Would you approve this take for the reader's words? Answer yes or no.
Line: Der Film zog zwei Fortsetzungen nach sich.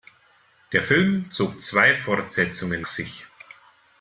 no